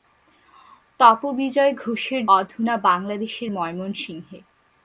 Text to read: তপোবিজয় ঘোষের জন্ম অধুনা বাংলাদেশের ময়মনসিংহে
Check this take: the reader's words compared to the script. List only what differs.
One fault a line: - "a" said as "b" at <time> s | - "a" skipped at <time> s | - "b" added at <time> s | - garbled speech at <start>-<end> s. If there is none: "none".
- "জন্ম" skipped at 2.2 s